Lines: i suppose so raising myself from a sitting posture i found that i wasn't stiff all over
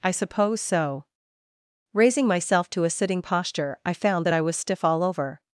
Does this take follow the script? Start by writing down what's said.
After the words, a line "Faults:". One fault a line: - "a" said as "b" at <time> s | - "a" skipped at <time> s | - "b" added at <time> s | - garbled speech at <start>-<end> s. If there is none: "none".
i suppose so raising myself to a sitting posture i found that i was stiff all over
Faults:
- "from" said as "to" at 2.7 s
- "wasn't" said as "was" at 4.4 s